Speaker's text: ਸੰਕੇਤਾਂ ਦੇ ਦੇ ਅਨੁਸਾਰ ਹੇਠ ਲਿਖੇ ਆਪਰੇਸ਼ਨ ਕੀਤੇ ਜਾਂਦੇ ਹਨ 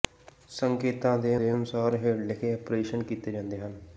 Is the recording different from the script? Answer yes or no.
no